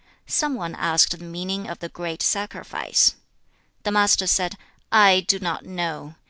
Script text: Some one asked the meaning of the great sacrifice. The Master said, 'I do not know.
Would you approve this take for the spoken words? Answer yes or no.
yes